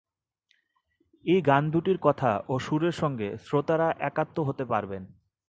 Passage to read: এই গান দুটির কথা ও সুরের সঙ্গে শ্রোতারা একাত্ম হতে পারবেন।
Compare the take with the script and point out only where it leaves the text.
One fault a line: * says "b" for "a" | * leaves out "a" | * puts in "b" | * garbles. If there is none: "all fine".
all fine